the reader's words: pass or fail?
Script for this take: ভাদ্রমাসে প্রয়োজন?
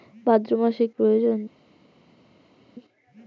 pass